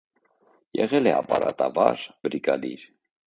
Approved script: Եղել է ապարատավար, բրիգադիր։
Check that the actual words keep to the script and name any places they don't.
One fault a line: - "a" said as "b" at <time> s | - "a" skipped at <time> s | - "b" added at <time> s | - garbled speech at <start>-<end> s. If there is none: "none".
none